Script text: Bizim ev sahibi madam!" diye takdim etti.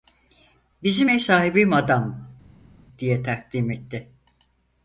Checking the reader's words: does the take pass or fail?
pass